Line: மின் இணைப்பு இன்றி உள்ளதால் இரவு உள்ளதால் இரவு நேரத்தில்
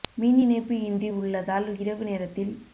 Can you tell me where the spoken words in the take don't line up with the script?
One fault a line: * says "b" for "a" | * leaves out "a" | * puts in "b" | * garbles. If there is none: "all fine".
* leaves out "உள்ளதால் இரவு"